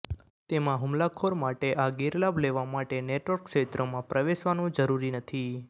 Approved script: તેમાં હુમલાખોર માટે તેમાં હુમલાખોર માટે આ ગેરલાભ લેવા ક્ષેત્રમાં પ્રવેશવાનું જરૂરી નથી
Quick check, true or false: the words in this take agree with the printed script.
false